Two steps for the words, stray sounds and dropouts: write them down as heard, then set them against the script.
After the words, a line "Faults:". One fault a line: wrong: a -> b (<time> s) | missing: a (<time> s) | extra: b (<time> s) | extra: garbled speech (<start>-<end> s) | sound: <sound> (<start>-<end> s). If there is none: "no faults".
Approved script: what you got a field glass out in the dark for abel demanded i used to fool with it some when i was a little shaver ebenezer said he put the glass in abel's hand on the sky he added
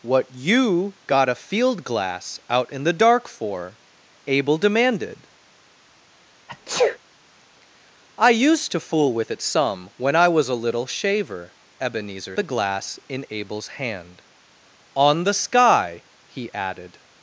what you got a field glass out in the dark for abel demanded i used to fool with it some when i was a little shaver ebenezer the glass in abel's hand on the sky he added
Faults:
sound: sneeze (6.5-7.0 s)
missing: said he put (12.4 s)